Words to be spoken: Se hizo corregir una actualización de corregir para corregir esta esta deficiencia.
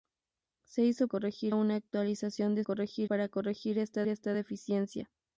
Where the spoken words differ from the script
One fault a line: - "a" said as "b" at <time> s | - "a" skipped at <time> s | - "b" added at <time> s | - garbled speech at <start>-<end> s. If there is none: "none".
none